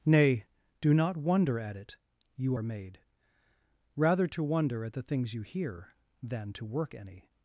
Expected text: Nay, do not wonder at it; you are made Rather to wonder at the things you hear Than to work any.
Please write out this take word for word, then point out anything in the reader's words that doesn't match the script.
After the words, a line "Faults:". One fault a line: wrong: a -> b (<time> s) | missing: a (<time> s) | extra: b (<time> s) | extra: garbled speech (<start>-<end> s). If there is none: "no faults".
Nay, do not wonder at it; you are made Rather to wonder at the things you hear Than to work any.
Faults:
no faults